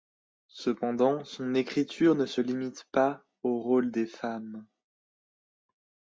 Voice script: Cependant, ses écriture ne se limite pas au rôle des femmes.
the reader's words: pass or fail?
fail